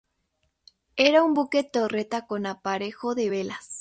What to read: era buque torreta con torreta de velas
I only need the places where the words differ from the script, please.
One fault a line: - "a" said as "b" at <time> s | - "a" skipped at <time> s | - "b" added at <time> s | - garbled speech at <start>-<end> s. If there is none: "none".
- "un" added at 1.2 s
- "torreta" said as "aparejo" at 2.5 s